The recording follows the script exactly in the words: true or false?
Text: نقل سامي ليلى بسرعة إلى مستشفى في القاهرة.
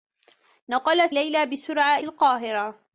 false